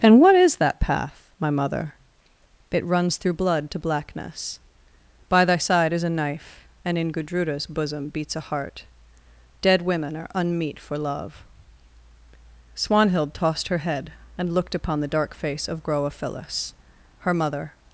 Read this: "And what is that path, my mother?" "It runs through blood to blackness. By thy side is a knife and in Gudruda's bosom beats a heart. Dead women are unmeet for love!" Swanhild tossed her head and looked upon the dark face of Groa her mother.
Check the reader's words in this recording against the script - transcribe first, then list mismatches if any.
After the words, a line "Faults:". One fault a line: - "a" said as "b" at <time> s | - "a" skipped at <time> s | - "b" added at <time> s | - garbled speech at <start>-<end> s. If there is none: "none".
"And what is that path, my mother?" "It runs through blood to blackness. By thy side is a knife and in Gudruda's bosom beats a heart. Dead women are unmeet for love!" Swanhild tossed her head and looked upon the dark face of Groa phyllis her mother.
Faults:
- "phyllis" added at 16.1 s